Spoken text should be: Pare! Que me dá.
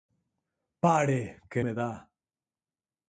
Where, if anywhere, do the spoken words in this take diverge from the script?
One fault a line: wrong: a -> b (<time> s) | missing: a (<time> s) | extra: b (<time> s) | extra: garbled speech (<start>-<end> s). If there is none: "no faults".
no faults